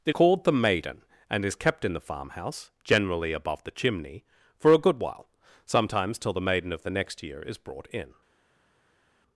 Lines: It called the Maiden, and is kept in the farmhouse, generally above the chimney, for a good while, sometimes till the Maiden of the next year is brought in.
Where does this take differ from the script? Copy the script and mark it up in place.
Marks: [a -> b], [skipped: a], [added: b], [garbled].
It called the Maiden, and is kept in the farmhouse, generally above the chimney, for a good while, sometimes till the Maiden of the next year is brought in.